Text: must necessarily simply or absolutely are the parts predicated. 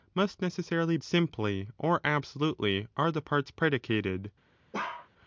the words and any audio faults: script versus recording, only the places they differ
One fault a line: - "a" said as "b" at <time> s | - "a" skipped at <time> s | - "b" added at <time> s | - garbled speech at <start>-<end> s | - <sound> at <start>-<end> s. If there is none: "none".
- bark at 4.7-5.1 s